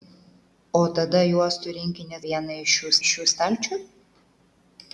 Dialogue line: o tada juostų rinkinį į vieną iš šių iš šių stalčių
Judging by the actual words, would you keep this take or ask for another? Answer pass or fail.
pass